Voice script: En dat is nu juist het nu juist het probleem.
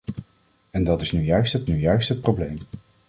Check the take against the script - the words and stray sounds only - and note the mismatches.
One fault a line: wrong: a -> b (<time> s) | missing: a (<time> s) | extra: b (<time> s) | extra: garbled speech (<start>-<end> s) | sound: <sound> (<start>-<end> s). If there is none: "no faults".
no faults